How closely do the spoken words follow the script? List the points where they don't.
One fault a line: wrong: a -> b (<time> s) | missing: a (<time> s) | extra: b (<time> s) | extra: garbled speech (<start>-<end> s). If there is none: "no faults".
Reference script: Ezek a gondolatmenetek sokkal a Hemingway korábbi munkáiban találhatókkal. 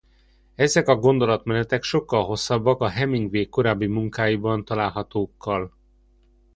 extra: hosszabbak (2.2 s)